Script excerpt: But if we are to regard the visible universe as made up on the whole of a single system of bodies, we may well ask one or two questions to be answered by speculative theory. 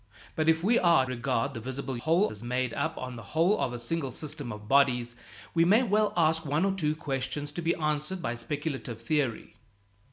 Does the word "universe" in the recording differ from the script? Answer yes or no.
yes